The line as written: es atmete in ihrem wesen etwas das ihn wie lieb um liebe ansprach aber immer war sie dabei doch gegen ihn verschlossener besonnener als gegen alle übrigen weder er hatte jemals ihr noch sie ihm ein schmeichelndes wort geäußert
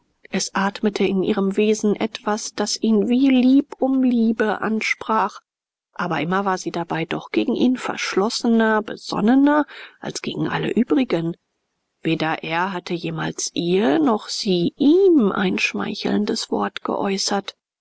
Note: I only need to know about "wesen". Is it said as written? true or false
true